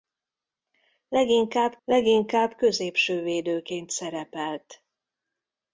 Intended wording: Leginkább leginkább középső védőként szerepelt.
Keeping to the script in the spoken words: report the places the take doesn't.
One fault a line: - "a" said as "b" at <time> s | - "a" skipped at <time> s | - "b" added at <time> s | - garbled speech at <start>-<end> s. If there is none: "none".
none